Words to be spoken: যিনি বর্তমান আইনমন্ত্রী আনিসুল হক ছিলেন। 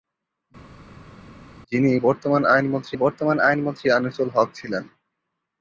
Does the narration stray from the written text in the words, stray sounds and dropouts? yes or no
yes